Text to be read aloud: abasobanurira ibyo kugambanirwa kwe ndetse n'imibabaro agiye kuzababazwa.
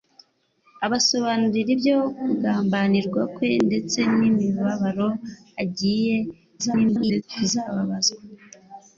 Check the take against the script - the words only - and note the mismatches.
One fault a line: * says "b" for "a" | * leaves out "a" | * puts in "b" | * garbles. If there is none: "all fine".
* garbles